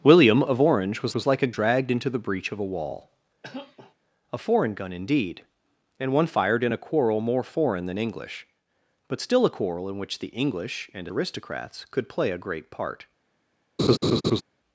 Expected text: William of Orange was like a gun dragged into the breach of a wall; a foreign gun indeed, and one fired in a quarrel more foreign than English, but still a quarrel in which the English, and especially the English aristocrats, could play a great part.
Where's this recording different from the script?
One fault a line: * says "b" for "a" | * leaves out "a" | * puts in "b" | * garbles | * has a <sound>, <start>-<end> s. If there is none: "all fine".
* puts in "was"
* leaves out "gun"
* has a cough, 3.4-3.9 s
* leaves out "especially the English"
* has a laugh, 13.8-14.4 s